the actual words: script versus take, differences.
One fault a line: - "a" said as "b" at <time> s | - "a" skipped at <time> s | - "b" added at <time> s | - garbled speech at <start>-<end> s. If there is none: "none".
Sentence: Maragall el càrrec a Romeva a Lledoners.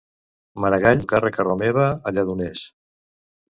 none